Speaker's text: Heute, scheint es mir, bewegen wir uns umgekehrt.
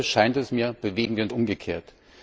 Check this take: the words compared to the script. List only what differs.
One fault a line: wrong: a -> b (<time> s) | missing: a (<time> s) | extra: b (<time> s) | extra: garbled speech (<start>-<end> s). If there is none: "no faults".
no faults